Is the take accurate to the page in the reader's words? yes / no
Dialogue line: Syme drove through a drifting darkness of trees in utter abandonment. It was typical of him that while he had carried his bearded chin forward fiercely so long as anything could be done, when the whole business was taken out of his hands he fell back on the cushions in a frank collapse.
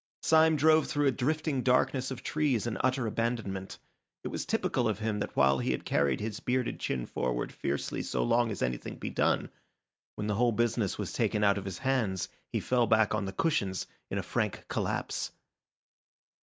no